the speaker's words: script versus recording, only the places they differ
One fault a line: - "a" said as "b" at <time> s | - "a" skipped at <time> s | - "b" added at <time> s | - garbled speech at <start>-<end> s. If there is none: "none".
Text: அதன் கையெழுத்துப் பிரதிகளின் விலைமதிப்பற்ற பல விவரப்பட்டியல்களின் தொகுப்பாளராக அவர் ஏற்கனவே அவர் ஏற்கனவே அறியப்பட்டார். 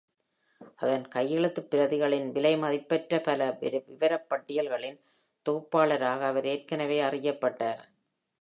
- "அவர் ஏற்கனவே" skipped at 7.0 s